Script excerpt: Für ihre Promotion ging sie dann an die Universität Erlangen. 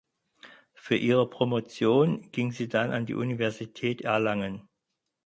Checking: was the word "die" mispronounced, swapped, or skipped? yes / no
no